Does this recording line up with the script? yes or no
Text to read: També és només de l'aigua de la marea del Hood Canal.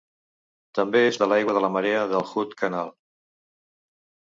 no